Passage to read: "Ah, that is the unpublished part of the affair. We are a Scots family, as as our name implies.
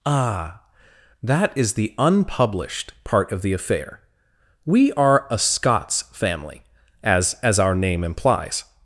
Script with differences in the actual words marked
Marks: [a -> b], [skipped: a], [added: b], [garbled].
"Ah, that is the unpublished part of the affair. We are a Scots family, as as our name implies.